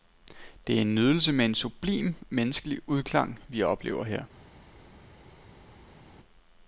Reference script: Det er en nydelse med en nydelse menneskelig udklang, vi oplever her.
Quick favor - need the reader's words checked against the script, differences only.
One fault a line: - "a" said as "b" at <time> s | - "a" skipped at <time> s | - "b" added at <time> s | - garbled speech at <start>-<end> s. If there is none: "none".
- "nydelse" said as "sublim" at 1.6 s